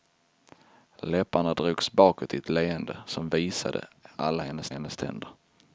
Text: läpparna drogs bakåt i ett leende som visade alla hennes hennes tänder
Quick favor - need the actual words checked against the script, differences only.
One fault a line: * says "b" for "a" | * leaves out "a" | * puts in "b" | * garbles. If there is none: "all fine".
all fine